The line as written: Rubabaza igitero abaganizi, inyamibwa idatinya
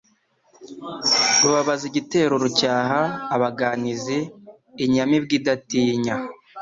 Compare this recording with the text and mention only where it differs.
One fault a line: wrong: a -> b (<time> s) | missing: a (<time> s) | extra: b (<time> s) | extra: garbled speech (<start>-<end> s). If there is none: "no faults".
extra: rucyaha (2.4 s)